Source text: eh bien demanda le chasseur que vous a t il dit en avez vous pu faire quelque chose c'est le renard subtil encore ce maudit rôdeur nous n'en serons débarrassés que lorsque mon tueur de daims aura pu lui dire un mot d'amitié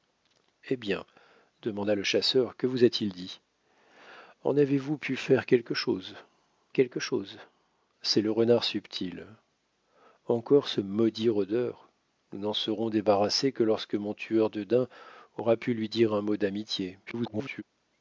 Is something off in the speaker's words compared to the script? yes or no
yes